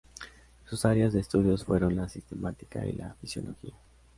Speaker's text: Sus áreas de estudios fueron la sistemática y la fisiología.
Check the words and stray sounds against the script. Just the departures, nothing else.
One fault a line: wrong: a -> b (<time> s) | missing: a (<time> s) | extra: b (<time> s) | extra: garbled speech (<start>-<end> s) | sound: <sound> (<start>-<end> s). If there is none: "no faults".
no faults